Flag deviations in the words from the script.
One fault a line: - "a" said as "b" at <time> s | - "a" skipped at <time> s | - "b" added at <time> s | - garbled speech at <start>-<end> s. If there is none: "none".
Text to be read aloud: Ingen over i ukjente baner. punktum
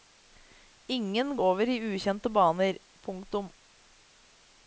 none